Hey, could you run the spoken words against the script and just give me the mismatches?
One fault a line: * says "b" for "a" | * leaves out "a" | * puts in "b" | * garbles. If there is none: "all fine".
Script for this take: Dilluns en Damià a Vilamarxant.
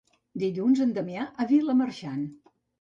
all fine